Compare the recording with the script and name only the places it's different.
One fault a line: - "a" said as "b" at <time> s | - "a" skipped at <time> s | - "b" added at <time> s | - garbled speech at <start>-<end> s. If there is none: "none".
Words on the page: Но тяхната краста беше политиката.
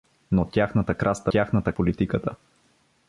- "беше" said as "тяхната" at 1.3 s